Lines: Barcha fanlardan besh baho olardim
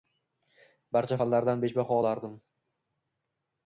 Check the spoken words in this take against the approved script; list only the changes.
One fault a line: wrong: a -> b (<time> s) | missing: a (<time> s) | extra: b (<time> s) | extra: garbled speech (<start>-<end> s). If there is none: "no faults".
no faults